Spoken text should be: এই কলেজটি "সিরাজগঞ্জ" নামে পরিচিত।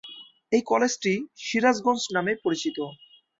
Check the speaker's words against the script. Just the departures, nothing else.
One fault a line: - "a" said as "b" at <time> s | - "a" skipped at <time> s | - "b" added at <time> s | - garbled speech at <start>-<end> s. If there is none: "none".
none